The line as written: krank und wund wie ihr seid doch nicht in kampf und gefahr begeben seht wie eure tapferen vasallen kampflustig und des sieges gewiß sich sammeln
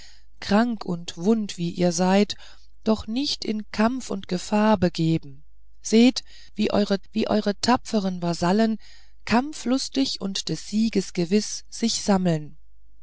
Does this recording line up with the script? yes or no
no